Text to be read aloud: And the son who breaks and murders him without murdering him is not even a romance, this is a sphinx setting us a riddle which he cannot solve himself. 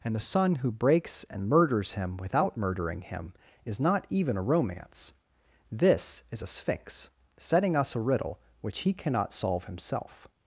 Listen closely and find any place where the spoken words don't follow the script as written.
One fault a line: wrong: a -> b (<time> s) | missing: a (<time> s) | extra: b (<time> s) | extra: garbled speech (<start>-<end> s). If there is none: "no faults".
no faults